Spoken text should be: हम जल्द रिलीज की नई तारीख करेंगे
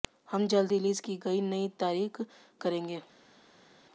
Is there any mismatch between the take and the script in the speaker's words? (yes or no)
no